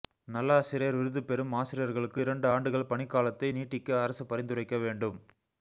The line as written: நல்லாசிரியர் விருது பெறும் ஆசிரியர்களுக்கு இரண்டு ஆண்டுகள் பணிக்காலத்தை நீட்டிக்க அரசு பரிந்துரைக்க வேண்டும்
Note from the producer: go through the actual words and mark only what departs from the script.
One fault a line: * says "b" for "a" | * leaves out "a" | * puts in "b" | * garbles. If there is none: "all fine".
all fine